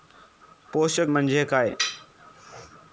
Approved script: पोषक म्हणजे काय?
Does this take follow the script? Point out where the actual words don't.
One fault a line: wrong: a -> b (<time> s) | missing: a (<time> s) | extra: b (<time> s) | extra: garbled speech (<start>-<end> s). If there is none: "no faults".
no faults